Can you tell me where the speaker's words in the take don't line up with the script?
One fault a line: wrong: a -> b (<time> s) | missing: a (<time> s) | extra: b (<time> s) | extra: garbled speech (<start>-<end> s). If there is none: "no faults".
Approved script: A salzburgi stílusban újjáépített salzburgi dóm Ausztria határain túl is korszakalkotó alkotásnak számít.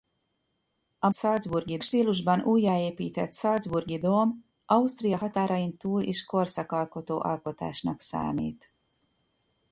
no faults